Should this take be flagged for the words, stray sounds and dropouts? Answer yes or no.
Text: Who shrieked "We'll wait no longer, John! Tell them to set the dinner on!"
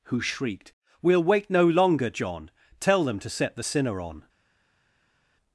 yes